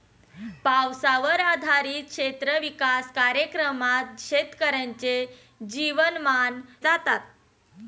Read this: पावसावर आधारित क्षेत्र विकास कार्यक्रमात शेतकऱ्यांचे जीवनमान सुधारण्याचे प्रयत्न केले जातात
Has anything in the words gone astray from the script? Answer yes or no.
yes